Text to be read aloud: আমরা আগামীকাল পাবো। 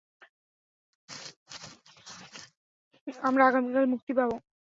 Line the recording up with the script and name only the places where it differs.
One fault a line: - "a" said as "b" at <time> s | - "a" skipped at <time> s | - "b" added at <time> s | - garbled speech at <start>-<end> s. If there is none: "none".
- "মুক্তি" added at 3.9 s